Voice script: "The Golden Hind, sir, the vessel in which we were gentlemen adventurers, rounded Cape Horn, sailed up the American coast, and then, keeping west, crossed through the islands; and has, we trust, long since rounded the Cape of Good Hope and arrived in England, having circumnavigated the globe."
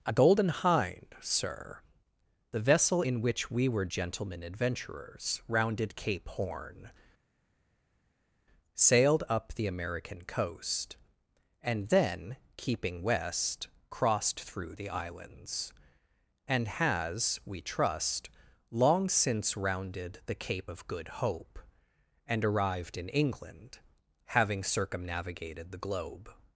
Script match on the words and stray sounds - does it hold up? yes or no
no